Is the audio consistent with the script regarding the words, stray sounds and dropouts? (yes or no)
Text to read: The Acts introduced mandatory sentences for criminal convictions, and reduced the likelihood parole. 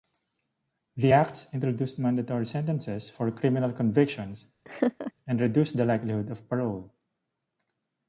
no